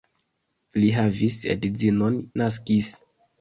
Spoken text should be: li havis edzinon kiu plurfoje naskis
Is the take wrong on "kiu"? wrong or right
wrong